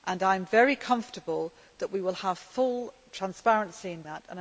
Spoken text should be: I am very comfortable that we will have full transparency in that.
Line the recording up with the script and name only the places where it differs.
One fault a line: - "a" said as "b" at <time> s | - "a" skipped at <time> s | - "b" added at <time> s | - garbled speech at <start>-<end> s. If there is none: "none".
none